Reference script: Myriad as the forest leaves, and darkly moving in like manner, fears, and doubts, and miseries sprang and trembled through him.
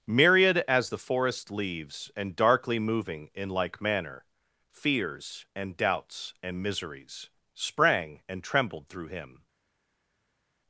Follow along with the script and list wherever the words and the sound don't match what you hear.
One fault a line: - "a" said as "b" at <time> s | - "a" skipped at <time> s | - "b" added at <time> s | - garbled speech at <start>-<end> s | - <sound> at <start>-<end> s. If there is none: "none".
none